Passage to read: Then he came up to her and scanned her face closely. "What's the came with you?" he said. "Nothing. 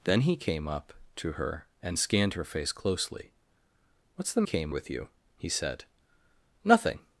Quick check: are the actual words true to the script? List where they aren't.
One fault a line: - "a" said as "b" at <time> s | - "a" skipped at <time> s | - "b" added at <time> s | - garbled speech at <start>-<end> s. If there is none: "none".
none